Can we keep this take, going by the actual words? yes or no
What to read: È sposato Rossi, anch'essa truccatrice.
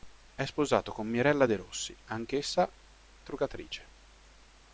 no